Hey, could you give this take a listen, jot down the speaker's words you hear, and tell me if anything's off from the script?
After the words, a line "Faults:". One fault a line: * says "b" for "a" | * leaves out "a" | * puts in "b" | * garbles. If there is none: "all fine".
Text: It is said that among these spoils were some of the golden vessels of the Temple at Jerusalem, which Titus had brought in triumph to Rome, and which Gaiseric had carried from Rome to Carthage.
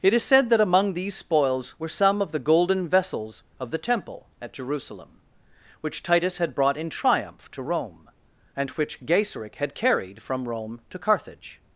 It is said that among these spoils were some of the golden vessels of the Temple at Jerusalem, which Titus had brought in triumph to Rome, and which Gaiseric had carried from Rome to Carthage.
Faults:
all fine